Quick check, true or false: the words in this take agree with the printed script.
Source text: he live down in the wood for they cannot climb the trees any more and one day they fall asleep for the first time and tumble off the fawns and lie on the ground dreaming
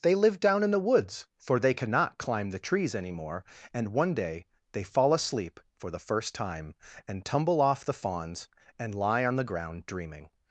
false